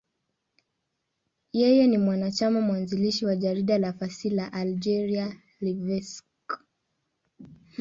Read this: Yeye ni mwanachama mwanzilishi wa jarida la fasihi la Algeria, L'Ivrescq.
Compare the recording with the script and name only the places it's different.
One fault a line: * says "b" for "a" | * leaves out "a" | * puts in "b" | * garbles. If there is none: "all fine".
all fine